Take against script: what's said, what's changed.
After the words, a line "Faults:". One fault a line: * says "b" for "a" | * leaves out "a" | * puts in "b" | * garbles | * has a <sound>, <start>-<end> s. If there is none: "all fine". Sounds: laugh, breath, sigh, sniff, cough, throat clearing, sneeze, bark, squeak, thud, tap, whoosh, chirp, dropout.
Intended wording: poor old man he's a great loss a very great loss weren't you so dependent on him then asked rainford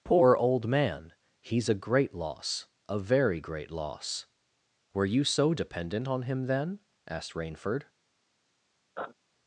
poor old man he's a great loss a very great loss were you so dependent on him then asked rainford
Faults:
* says "were" for "weren't"
* has a sniff, 9.0-9.1 s